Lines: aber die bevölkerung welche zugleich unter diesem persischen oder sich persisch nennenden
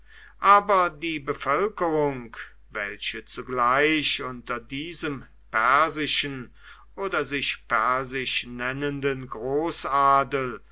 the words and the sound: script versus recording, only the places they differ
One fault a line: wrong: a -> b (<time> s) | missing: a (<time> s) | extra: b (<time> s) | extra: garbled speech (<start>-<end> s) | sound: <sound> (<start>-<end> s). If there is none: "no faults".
no faults